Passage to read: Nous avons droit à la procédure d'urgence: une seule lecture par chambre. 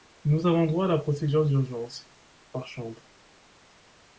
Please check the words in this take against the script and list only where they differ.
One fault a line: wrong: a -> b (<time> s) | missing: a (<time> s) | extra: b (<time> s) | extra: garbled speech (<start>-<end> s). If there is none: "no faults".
missing: une seule lecture (2.1 s)